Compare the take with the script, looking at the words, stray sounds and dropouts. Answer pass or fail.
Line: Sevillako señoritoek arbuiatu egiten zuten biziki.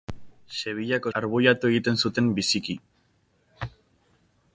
fail